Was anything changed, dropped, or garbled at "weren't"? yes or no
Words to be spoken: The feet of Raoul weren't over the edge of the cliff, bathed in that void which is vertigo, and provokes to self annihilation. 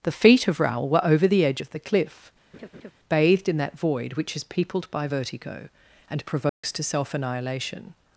yes